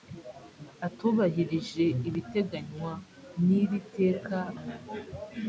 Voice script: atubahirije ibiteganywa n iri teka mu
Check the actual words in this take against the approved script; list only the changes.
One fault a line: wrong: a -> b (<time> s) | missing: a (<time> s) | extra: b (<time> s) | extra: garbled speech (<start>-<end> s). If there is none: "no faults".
no faults